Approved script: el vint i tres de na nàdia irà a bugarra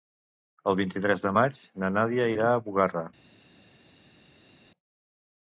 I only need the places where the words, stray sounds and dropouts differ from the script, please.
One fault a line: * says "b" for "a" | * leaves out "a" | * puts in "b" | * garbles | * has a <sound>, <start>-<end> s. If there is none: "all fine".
* puts in "maig"